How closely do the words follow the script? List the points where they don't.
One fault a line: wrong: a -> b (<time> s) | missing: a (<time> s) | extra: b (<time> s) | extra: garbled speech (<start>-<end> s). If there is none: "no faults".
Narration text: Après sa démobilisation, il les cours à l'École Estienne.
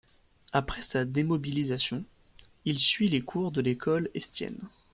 extra: suit (2.8 s)
wrong: à -> de (3.5 s)